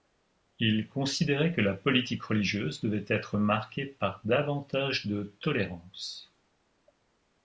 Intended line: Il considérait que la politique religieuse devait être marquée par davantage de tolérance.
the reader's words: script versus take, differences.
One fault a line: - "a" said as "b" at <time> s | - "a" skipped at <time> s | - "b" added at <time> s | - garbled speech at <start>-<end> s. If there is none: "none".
none